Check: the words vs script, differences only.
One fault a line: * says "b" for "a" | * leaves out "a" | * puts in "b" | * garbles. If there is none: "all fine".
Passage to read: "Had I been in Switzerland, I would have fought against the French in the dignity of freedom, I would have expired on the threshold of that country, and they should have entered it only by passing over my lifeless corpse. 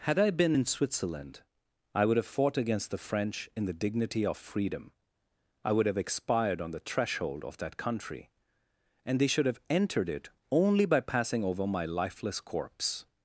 all fine